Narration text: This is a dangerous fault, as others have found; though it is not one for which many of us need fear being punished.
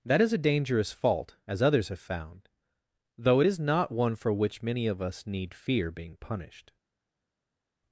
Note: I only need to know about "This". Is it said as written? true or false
false